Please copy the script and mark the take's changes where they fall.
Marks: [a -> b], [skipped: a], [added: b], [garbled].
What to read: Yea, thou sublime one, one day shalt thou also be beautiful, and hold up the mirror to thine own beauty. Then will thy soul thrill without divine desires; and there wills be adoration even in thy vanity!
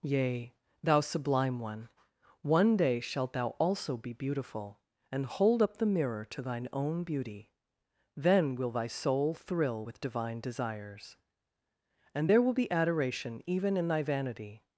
Yea, thou sublime one, one day shalt thou also be beautiful, and hold up the mirror to thine own beauty. Then will thy soul thrill [without -> with] divine desires; and there [wills -> will] be adoration even in thy vanity!